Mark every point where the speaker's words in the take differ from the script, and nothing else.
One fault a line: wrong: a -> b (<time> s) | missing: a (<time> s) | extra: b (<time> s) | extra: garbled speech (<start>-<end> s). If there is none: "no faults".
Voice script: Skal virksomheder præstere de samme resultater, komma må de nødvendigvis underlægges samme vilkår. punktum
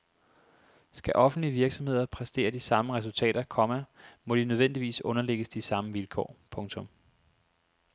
extra: offentlige (1.1 s)
extra: de (5.5 s)